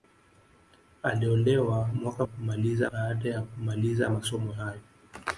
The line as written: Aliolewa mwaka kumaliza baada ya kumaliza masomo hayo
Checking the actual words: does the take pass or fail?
pass